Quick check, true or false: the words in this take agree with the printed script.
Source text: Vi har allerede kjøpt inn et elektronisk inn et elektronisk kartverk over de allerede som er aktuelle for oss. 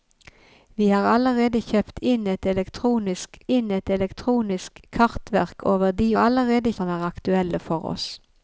true